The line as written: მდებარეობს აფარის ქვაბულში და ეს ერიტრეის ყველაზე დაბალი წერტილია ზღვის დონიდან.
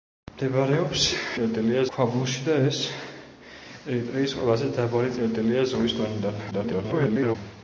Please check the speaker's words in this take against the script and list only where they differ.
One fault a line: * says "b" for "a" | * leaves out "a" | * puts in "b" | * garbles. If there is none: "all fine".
* says "წერტილია" for "აფარის"
* garbles